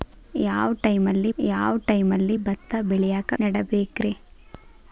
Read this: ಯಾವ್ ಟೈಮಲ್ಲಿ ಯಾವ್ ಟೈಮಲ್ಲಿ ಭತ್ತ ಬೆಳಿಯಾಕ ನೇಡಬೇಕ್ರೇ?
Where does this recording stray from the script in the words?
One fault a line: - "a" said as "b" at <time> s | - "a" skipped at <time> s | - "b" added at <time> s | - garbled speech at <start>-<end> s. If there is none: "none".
none